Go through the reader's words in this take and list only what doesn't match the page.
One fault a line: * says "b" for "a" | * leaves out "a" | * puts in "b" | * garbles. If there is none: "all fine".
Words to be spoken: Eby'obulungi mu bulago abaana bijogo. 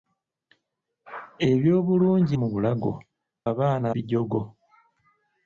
all fine